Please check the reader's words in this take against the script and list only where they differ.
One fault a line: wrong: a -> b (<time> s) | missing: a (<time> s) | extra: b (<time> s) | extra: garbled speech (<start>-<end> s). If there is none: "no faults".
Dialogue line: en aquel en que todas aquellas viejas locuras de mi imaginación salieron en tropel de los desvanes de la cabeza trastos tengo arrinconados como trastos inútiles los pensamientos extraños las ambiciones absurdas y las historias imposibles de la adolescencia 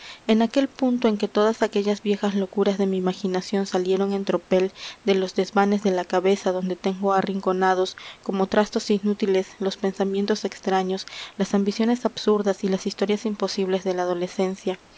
extra: punto (0.7 s)
wrong: trastos -> donde (6.5 s)